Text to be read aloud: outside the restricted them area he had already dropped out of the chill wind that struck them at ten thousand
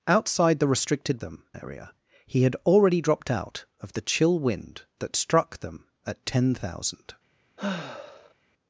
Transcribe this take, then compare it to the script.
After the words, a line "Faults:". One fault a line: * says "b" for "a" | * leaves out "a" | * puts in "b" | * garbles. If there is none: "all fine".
outside the restricted them area he had already dropped out of the chill wind that struck them at ten thousand
Faults:
all fine